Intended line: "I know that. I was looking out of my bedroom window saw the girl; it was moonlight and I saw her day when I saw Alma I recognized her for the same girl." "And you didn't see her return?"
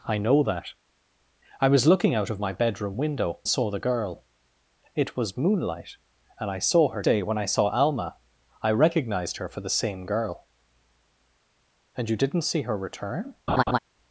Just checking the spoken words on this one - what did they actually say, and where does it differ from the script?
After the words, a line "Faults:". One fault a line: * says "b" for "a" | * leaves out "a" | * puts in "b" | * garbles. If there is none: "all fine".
"I know that. I was looking out of my bedroom window saw the girl; it was moonlight and I saw her day when I saw Alma I recognized her for the same girl." "And you didn't see her return?"
Faults:
all fine